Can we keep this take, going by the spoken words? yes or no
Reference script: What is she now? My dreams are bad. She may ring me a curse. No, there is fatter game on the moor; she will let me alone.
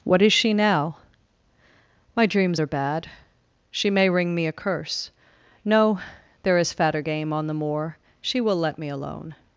yes